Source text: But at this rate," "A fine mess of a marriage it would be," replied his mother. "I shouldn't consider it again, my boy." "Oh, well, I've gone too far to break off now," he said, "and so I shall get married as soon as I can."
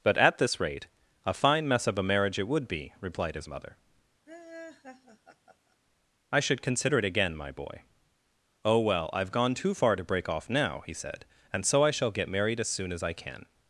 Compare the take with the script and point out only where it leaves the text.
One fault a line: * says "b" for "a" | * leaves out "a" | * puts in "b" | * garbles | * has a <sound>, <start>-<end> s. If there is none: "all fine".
* has a laugh, 4.3-5.8 s
* says "should" for "shouldn't"